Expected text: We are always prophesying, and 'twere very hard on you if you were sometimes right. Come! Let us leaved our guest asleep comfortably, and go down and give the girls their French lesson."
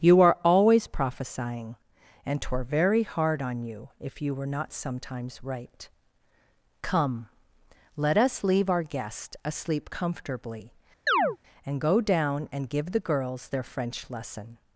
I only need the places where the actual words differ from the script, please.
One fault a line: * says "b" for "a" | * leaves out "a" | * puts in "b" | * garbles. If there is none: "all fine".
* says "You" for "We"
* puts in "not"
* says "leave" for "leaved"